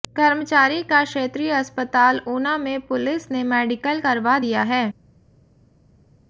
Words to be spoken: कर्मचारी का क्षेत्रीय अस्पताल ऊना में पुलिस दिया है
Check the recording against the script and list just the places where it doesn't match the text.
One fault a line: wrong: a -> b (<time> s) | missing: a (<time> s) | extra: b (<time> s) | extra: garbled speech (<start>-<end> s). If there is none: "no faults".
extra: ने मेडिकल करवा (3.3 s)